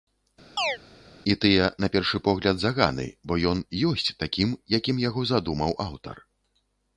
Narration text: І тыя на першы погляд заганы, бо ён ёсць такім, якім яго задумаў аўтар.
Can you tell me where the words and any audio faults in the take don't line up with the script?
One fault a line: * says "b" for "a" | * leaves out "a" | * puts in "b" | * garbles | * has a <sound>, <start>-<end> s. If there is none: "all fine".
* has a chirp, 0.6-0.8 s